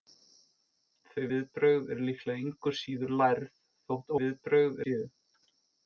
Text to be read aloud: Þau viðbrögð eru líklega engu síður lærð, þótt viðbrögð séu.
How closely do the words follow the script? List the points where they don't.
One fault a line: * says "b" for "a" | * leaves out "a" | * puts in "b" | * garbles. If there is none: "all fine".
all fine